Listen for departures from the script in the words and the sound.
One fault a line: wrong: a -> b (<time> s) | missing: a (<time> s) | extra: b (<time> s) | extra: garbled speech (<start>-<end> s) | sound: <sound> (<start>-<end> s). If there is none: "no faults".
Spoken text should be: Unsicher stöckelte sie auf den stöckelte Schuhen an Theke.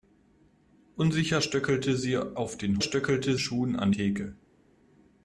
no faults